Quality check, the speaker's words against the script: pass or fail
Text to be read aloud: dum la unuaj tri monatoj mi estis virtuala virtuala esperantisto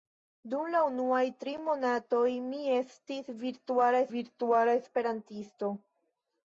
pass